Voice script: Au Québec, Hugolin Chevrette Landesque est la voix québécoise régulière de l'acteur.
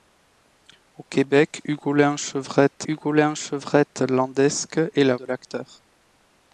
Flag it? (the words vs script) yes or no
yes